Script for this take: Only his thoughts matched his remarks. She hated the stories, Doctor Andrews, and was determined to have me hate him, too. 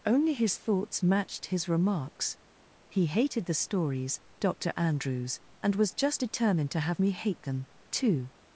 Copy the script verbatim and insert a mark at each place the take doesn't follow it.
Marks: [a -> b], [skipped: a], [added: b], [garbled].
Only his thoughts matched his remarks. [She -> He] hated the stories, Doctor Andrews, and was [added: just] determined to have me hate [him, -> them] too.